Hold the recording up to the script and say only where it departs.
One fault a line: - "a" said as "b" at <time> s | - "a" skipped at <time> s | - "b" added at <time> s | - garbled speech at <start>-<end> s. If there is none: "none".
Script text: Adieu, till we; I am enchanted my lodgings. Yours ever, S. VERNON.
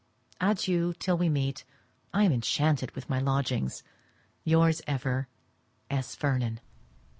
- "meet" added at 1.3 s
- "with" added at 3.0 s